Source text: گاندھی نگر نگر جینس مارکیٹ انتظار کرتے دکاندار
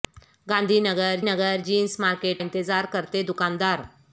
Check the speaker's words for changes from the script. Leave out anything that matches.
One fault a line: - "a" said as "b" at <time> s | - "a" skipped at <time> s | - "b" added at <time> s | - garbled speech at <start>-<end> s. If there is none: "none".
none